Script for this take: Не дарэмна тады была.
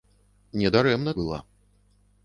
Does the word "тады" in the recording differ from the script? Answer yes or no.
yes